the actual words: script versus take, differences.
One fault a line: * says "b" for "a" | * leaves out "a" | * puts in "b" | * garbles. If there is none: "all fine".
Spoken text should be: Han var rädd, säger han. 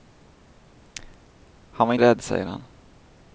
all fine